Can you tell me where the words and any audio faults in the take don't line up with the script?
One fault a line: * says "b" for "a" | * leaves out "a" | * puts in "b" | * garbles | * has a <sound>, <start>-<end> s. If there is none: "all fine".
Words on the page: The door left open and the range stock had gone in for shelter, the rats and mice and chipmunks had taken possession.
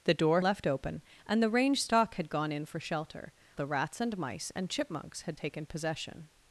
all fine